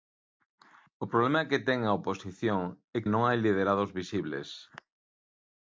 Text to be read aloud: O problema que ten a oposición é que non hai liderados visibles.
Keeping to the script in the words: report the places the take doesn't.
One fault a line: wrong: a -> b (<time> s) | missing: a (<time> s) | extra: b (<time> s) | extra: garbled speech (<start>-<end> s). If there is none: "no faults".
missing: que (3.0 s)